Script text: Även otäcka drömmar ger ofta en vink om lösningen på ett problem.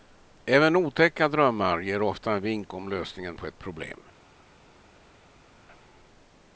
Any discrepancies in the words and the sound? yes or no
no